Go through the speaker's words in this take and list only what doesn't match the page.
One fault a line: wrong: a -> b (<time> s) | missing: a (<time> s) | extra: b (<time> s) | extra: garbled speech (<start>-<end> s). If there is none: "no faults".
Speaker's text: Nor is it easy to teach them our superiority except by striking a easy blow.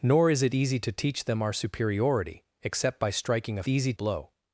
no faults